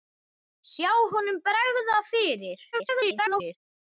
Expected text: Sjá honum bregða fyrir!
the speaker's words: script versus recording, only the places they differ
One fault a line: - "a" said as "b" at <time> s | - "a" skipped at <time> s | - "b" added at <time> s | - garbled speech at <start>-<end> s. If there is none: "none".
- garbled speech at 2.7-3.6 s